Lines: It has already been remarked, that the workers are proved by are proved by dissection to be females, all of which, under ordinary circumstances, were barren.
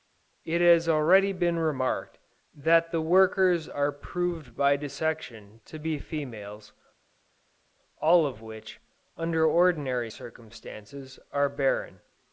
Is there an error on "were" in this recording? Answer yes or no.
yes